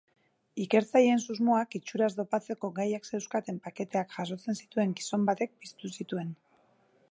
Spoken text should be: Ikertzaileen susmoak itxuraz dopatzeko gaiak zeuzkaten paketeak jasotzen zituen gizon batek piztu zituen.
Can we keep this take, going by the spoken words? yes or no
yes